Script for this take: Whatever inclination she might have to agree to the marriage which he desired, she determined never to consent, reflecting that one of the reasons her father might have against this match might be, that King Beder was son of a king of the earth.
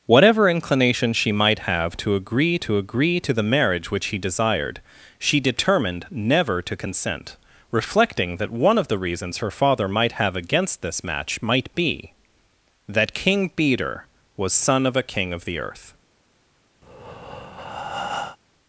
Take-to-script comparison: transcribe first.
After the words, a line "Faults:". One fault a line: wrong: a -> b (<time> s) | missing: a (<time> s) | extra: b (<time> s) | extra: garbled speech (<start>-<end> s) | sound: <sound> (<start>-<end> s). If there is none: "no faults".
Whatever inclination she might have to agree to agree to the marriage which he desired, she determined never to consent, reflecting that one of the reasons her father might have against this match might be, that King Beder was son of a king of the earth.
Faults:
extra: agree to (2.8 s)
sound: breath (16.8-18.4 s)